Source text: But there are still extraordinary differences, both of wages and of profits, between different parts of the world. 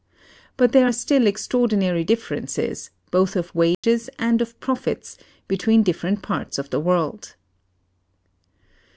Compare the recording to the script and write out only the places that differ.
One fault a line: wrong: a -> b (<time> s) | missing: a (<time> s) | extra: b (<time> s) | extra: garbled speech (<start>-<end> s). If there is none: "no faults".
no faults